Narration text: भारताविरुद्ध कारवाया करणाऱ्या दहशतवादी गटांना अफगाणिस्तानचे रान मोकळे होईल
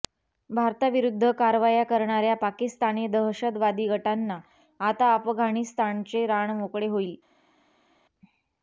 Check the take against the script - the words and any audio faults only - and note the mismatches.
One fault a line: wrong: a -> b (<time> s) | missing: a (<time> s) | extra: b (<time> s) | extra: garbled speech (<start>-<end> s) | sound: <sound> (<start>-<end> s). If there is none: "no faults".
extra: पाकिस्तानी (2.4 s)
extra: आता (4.8 s)